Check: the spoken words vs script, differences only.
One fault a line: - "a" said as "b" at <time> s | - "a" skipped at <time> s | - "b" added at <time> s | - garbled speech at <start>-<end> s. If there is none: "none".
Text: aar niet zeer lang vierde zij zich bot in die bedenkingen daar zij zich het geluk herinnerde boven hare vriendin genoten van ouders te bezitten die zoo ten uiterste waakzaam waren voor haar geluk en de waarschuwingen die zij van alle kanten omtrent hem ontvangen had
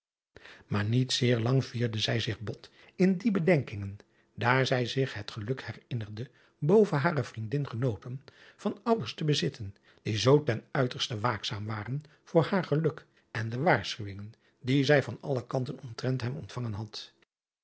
none